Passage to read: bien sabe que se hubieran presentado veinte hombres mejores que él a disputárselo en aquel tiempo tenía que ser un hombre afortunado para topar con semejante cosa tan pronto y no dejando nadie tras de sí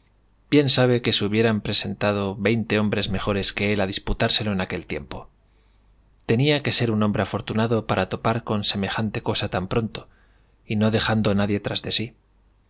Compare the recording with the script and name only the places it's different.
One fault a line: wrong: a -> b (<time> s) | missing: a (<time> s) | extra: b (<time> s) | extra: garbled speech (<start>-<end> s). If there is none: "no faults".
no faults